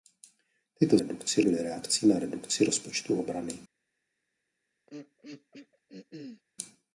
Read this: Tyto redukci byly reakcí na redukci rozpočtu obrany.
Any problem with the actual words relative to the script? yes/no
no